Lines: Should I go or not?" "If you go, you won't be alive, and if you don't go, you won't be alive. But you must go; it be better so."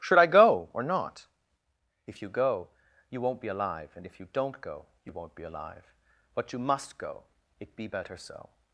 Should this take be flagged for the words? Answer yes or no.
no